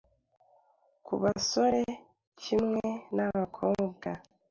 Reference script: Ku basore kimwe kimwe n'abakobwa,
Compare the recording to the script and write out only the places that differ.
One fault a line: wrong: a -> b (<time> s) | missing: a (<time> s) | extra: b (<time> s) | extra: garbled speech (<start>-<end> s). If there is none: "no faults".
missing: kimwe (2.9 s)